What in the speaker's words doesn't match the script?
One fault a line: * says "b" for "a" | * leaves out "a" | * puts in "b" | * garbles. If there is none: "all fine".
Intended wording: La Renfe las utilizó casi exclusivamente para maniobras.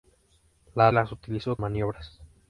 * leaves out "Renfe"
* leaves out "casi exclusivamente para"